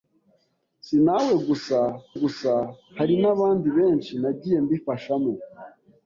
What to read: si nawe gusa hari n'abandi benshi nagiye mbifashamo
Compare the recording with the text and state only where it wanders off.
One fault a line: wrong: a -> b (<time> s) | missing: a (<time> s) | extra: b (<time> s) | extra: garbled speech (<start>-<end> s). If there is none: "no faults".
extra: gusa (2.2 s)